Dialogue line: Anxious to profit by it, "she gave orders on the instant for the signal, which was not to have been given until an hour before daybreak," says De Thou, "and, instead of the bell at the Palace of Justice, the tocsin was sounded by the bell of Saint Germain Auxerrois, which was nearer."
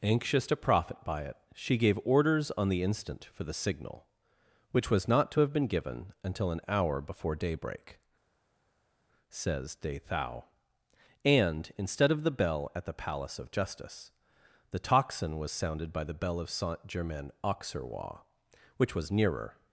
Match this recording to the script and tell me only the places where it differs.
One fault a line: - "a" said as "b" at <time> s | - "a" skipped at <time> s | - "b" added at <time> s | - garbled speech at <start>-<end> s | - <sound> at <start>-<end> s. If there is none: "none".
none